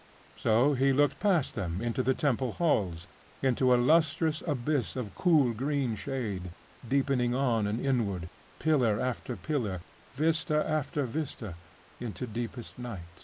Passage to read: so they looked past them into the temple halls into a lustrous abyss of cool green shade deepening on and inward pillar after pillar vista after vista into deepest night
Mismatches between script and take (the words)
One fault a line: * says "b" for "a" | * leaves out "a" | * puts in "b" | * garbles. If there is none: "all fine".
* says "he" for "they"